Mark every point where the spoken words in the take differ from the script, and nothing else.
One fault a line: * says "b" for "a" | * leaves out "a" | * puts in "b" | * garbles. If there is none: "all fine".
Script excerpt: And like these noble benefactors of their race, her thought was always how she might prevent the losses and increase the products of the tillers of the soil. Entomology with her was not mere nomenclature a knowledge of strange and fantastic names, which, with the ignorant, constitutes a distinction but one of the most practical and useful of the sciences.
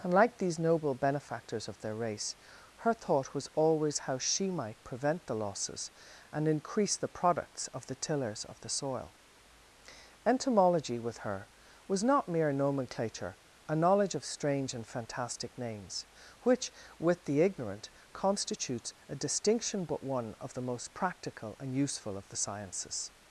all fine